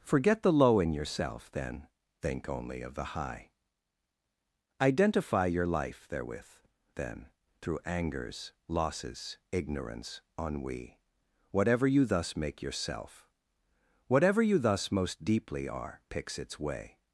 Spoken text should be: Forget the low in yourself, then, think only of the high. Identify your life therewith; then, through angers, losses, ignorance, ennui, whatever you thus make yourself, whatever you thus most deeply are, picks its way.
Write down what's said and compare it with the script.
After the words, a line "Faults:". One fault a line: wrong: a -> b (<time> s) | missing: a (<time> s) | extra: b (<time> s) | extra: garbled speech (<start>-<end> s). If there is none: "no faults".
Forget the low in yourself, then, think only of the high. Identify your life therewith; then, through angers, losses, ignorance, ennui, whatever you thus make yourself, whatever you thus most deeply are, picks its way.
Faults:
no faults